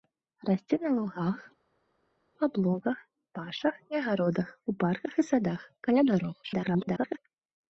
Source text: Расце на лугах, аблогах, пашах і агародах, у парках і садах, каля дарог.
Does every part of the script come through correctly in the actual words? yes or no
no